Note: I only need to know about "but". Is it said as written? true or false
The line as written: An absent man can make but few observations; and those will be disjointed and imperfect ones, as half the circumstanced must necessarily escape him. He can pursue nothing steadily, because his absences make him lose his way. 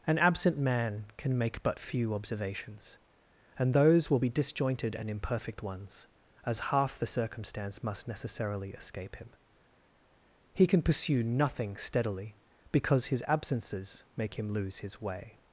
true